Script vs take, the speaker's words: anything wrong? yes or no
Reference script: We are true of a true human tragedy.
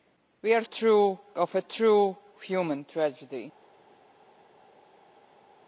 no